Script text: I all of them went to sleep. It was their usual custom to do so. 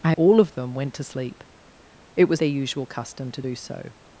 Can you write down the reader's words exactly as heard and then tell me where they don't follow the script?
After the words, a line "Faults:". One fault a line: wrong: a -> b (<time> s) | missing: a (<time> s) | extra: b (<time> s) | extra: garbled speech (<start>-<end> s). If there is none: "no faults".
I all of them went to sleep. It was their usual custom to do so.
Faults:
no faults